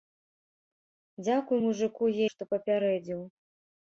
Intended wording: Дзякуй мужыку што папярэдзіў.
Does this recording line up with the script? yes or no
yes